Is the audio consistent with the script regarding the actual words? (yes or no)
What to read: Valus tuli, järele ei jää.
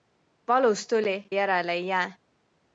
yes